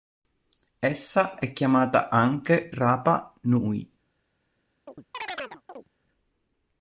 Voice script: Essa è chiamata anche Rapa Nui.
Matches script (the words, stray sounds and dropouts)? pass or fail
fail